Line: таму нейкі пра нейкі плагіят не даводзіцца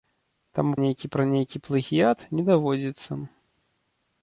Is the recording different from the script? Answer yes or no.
no